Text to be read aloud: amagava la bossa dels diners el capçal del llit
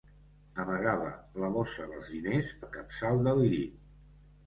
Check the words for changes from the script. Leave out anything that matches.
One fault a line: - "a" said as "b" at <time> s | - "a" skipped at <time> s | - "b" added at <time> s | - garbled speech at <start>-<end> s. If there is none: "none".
none